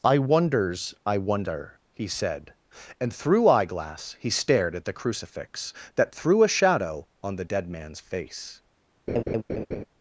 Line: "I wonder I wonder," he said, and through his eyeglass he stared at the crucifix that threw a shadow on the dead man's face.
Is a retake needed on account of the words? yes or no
yes